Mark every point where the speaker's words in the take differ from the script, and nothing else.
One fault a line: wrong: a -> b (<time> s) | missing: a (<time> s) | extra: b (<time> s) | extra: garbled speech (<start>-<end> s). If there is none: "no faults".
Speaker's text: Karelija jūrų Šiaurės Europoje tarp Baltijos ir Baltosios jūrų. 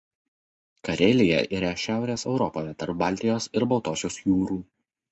wrong: jūrų -> yra (1.6 s)